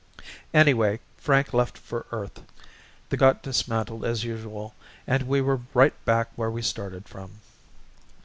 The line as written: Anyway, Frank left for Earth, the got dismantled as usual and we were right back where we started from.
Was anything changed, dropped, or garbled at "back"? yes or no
no